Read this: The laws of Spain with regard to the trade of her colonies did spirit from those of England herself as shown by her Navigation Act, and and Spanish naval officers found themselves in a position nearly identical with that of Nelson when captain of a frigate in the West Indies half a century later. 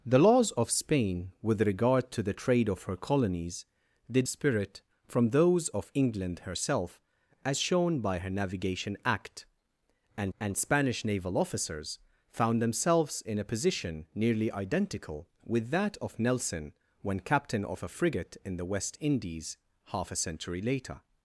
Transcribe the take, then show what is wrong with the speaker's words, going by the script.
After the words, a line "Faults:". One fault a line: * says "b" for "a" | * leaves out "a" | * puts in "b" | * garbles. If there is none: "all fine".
The laws of Spain with regard to the trade of her colonies did spirit from those of England herself as shown by her Navigation Act, and and Spanish naval officers found themselves in a position nearly identical with that of Nelson when captain of a frigate in the West Indies half a century later.
Faults:
all fine